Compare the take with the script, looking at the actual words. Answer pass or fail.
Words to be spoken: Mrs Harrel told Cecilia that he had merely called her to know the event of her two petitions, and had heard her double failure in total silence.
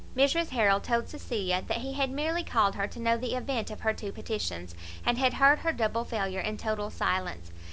pass